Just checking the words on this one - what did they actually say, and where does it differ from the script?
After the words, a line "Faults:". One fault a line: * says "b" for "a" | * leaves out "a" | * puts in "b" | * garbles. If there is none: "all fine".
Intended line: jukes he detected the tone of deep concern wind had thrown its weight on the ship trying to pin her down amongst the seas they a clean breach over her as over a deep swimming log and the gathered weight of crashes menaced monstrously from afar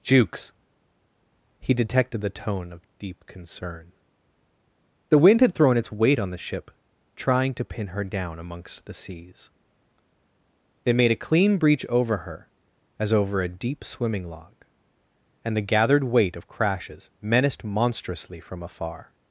jukes he detected the tone of deep concern the wind had thrown its weight on the ship trying to pin her down amongst the seas they made a clean breach over her as over a deep swimming log and the gathered weight of crashes menaced monstrously from afar
Faults:
* puts in "the"
* puts in "made"